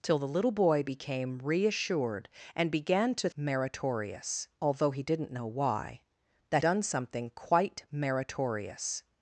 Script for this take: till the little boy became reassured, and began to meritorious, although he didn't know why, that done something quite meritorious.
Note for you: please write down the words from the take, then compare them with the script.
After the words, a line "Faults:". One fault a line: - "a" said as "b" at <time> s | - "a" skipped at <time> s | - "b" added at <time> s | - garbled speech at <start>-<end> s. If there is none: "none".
till the little boy became reassured, and began to meritorious, although he didn't know why, that done something quite meritorious.
Faults:
none